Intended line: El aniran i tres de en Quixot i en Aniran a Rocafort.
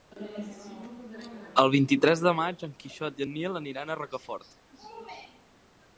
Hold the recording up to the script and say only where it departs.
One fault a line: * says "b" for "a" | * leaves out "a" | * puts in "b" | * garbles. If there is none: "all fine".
* says "vint" for "aniran"
* puts in "maig"
* puts in "Nil"